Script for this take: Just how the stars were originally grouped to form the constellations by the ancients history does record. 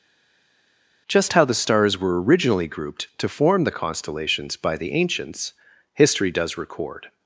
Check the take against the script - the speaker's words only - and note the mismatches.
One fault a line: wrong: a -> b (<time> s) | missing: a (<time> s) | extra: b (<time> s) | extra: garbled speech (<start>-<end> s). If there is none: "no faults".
no faults